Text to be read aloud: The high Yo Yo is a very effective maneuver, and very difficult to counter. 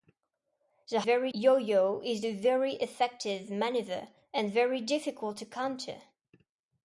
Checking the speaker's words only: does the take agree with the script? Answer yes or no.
no